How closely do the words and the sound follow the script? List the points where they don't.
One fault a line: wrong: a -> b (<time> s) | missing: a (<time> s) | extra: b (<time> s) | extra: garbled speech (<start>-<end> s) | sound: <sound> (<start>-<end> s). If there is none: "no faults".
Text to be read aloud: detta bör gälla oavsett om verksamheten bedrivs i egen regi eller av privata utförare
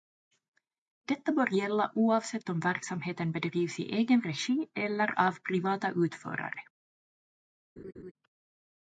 sound: laugh (7.8-8.1 s)